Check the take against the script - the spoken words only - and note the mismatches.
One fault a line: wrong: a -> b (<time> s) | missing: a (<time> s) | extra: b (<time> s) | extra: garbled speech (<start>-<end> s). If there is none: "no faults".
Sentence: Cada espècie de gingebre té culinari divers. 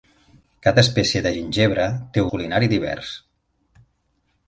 no faults